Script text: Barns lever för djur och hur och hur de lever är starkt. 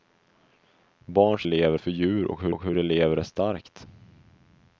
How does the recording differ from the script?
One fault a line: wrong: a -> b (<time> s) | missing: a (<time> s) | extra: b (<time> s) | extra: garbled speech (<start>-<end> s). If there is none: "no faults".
no faults